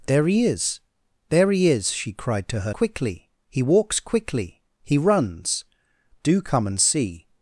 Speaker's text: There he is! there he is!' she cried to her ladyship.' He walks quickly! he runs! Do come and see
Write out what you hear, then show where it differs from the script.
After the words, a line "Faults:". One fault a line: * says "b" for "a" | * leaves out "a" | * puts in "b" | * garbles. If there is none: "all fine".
There he is! there he is!' she cried to her quickly.' He walks quickly! he runs! Do come and see
Faults:
* says "quickly" for "ladyship"